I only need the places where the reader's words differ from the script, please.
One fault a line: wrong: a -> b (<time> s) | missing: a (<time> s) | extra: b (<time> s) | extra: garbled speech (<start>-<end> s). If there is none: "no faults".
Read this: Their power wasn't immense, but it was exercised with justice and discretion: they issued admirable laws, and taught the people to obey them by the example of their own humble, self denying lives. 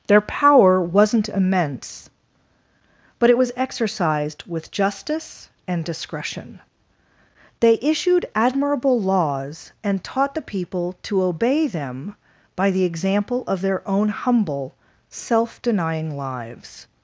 no faults